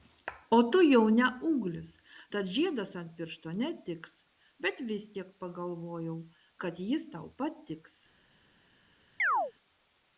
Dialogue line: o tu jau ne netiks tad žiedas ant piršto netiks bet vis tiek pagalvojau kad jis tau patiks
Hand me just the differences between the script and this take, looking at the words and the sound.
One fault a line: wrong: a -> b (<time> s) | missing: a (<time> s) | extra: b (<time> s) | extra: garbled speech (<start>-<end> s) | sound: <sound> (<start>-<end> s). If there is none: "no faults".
wrong: netiks -> ūglis (1.5 s)
sound: chirp (9.2-9.5 s)